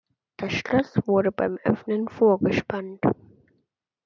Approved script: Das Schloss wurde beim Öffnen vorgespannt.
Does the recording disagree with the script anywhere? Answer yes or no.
no